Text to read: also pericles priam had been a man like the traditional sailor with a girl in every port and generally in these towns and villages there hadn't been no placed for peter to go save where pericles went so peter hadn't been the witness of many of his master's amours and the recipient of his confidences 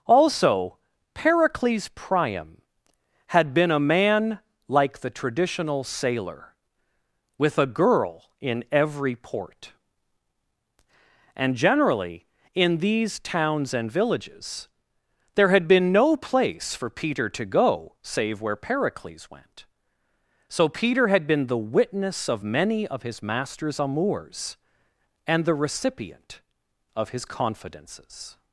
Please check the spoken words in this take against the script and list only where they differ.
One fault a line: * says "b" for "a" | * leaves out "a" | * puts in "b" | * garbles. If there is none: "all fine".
* says "had" for "hadn't"
* says "place" for "placed"
* says "had" for "hadn't"